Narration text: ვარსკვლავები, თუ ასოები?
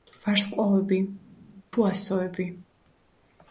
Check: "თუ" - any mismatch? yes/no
no